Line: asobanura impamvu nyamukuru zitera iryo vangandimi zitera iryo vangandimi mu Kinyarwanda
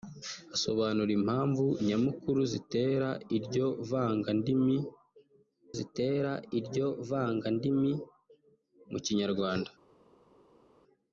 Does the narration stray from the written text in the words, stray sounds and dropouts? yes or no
no